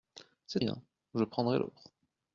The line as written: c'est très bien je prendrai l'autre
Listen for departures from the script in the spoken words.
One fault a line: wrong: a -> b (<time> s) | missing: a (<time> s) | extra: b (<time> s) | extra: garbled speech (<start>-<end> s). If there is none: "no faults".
missing: très (0.6 s)